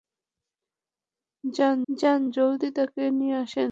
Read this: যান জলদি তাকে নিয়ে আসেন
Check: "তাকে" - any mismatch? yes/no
no